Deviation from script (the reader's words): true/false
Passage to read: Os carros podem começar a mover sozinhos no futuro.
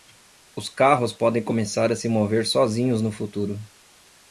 true